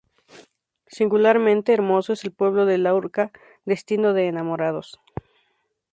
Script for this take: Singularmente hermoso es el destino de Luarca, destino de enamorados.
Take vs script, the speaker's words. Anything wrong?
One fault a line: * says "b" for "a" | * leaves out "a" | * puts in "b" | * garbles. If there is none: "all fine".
* says "pueblo" for "destino"